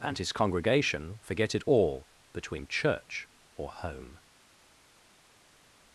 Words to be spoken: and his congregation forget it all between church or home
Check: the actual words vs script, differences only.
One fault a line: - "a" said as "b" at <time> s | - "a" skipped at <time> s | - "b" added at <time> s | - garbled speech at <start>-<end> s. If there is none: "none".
none